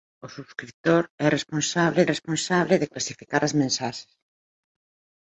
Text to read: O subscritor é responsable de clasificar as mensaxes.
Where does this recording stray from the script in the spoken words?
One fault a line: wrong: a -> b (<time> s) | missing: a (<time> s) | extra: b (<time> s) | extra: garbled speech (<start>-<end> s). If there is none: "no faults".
extra: responsable (2.1 s)